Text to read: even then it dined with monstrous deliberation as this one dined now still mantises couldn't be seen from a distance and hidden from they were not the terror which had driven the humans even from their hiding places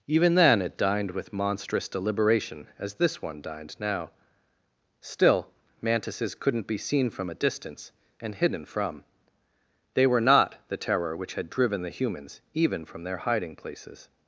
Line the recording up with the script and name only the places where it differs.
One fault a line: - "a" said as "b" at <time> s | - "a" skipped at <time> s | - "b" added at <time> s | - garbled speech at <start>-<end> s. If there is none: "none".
none